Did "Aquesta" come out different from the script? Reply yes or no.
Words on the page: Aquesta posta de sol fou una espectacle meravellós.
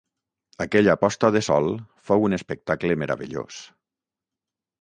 yes